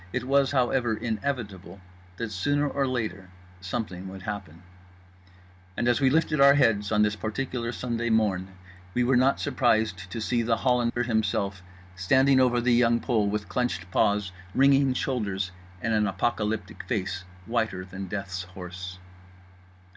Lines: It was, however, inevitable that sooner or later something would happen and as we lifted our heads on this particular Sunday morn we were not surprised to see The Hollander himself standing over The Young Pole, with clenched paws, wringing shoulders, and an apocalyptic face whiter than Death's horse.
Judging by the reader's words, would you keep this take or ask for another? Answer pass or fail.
pass